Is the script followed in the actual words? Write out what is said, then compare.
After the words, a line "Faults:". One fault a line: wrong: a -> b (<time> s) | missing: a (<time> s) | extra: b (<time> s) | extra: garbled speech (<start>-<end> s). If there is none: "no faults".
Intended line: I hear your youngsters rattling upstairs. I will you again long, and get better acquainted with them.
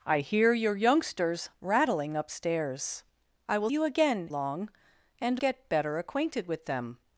I hear your youngsters rattling upstairs. I will you again long, and get better acquainted with them.
Faults:
no faults